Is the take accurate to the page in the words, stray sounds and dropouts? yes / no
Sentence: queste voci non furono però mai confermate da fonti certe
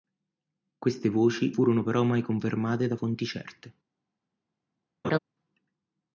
no